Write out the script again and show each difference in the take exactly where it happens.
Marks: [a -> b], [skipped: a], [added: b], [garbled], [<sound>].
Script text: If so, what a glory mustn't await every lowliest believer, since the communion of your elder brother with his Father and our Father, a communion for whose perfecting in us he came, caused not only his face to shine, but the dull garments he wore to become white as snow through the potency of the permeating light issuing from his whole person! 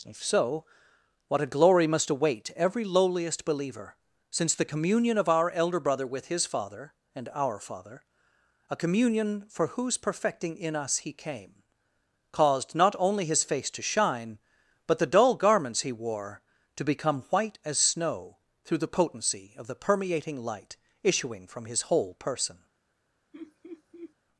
If so, what a glory [mustn't -> must] await every lowliest believer, since the communion of [your -> our] elder brother with his Father and our Father, a communion for whose perfecting in us he came, caused not only his face to shine, but the dull garments he wore to become white as snow through the potency of the permeating light issuing from his whole person! [laugh]